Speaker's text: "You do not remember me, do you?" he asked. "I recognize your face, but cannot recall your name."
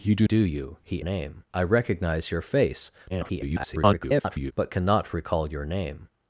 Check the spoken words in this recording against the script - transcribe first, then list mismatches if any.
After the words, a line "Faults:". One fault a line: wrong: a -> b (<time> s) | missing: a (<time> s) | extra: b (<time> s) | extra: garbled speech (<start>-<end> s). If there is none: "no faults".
"You do do you?" he name. "I recognize your face, [garbled] but cannot recall your name."
Faults:
missing: not remember me (0.3 s)
wrong: asked -> name (1.0 s)
extra: garbled speech (3.1-4.5 s)